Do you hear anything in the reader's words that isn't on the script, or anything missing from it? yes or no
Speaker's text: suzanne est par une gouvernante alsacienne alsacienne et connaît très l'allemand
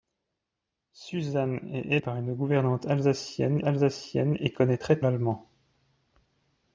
no